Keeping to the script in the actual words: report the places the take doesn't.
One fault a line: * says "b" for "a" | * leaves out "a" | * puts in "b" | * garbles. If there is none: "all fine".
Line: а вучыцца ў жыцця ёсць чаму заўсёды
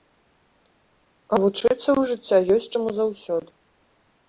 all fine